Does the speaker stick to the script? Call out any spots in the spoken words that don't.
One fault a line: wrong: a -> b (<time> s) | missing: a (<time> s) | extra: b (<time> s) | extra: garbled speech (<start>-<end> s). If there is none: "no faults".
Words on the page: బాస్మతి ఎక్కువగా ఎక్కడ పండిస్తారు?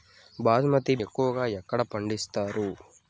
no faults